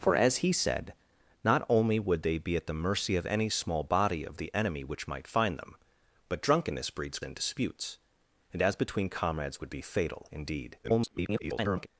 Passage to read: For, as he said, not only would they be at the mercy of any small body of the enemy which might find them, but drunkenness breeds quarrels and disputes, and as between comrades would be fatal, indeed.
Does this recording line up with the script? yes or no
no